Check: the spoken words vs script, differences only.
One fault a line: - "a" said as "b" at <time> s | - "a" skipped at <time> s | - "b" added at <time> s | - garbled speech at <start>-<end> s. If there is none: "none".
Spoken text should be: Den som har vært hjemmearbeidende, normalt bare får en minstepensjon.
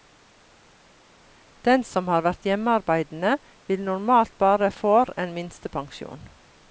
- "vil" added at 3.7 s